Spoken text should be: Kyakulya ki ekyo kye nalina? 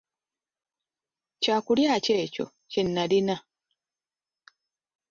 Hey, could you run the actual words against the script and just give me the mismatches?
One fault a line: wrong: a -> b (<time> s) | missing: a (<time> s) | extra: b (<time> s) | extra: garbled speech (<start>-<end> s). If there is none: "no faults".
no faults